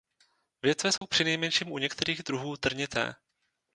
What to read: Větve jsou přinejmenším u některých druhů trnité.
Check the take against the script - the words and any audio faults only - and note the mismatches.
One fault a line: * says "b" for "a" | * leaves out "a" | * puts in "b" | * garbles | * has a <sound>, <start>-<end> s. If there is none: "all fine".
* has a dropout, 1.0-1.0 s